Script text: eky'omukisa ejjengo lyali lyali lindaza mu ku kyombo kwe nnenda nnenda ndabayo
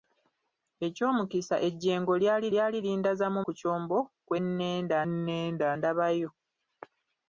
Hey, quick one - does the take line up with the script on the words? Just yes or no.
yes